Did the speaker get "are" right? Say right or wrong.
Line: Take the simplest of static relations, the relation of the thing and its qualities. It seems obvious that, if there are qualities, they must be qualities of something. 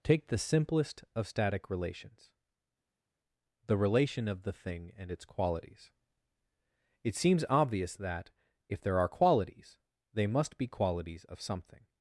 right